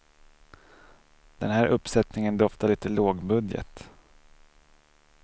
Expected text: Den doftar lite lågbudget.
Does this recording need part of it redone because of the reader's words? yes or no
yes